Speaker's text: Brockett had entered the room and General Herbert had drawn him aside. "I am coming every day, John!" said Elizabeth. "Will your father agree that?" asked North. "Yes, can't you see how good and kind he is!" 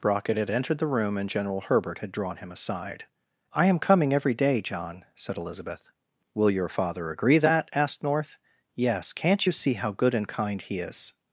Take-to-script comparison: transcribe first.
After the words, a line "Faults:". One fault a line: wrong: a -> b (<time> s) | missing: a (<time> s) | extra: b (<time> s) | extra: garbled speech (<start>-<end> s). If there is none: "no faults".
Brockett had entered the room and General Herbert had drawn him aside. "I am coming every day, John!" said Elizabeth. "Will your father agree that?" asked North. "Yes, can't you see how good and kind he is!"
Faults:
no faults